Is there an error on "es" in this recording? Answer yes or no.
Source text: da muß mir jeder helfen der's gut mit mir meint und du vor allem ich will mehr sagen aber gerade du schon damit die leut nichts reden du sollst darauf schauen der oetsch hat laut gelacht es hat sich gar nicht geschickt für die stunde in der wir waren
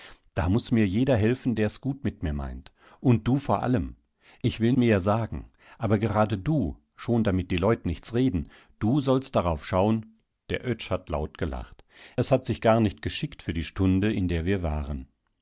no